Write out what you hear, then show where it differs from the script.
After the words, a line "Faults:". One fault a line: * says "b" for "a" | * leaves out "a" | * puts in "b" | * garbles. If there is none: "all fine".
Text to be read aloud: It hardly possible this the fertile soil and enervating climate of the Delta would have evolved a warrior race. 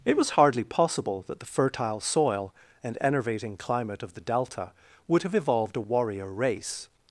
It was hardly possible that the fertile soil and enervating climate of the Delta would have evolved a warrior race.
Faults:
* puts in "was"
* says "that" for "this"